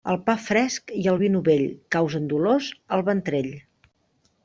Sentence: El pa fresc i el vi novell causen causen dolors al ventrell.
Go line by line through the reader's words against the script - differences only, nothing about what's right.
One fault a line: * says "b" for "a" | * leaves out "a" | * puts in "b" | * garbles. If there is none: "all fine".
* leaves out "causen"